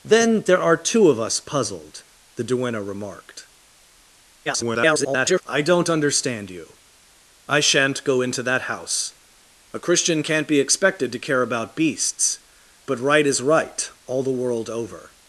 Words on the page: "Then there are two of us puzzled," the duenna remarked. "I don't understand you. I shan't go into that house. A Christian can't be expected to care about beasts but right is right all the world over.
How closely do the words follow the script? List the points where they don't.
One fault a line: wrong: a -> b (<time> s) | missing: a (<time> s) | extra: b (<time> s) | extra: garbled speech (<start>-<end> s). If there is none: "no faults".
extra: garbled speech (4.5-5.4 s)